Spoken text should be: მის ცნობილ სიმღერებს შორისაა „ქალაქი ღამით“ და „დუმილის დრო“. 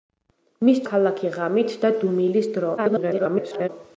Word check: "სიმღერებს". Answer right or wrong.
wrong